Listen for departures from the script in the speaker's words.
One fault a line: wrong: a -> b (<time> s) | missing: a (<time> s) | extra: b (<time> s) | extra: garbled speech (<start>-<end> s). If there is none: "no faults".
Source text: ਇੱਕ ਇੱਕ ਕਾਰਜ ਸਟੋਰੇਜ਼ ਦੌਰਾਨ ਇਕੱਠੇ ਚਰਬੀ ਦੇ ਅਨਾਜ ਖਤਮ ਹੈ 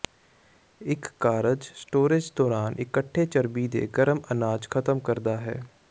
missing: ਇੱਕ (1.1 s)
extra: ਗਰਮ (4.0 s)
extra: ਕਰਦਾ (5.0 s)